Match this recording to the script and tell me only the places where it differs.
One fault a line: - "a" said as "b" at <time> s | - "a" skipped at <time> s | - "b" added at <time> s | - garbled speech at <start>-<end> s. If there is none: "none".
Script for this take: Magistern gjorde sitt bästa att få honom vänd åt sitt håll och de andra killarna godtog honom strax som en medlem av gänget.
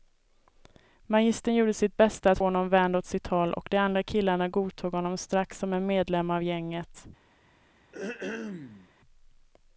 - "få" skipped at 2.4 s